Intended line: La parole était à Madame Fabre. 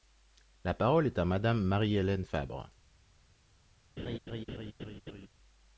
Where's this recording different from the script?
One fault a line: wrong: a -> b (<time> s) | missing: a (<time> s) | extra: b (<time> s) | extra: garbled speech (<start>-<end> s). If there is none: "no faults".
wrong: était -> est (1.1 s)
extra: Marie Hélène (1.6 s)